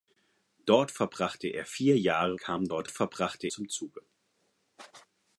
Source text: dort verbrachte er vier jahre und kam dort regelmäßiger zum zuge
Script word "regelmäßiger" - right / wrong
wrong